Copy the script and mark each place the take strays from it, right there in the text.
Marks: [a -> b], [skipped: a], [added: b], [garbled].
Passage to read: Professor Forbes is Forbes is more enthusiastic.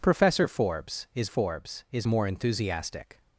Professor Forbes is Forbes is more enthusiastic.